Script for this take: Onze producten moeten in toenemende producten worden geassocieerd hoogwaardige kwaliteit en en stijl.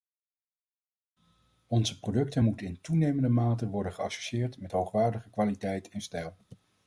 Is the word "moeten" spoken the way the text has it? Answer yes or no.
yes